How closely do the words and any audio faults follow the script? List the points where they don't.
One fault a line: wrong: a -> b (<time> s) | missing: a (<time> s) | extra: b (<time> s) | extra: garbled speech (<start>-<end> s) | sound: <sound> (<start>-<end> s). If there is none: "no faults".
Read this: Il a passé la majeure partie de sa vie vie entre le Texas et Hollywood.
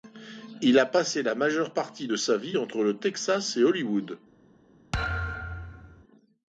missing: vie (2.6 s)
sound: thud (4.9-6.0 s)